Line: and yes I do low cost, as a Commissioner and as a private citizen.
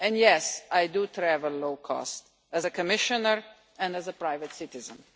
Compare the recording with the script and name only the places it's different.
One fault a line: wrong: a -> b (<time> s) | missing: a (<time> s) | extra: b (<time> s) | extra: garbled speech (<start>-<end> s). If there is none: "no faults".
extra: travel (1.1 s)